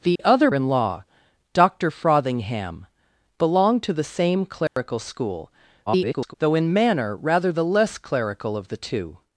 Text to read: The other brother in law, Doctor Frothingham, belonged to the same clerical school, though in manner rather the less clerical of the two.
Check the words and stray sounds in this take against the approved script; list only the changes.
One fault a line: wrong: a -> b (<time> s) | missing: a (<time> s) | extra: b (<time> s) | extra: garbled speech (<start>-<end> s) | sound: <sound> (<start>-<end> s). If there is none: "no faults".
sound: dropout (0.2-0.2 s)
missing: brother (0.5 s)
sound: dropout (4.7-4.8 s)
extra: garbled speech (5.9-6.3 s)